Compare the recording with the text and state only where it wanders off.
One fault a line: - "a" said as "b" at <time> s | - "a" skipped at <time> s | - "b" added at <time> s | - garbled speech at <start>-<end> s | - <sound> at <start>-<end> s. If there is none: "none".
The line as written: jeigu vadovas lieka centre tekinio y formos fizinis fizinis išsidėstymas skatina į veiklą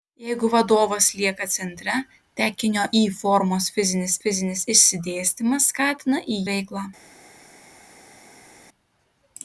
none